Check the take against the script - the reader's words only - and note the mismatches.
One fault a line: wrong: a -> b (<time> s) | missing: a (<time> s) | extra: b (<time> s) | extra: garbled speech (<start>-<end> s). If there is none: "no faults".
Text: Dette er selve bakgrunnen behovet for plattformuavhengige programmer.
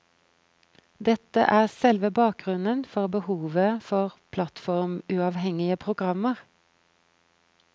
extra: for (2.9 s)